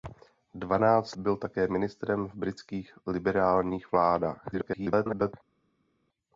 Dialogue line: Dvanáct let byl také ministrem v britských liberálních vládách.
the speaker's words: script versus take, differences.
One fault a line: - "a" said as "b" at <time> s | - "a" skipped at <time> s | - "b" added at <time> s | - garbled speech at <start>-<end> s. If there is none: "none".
- "let" skipped at 1.1 s
- garbled speech at 4.5-5.3 s